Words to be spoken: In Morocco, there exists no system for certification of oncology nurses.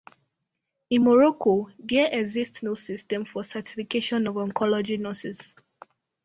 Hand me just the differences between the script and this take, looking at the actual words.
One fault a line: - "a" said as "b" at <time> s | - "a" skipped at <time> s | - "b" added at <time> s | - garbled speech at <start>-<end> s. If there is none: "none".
none